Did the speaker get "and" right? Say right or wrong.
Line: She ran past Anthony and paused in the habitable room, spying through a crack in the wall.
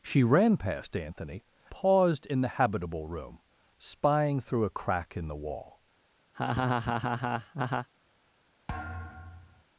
wrong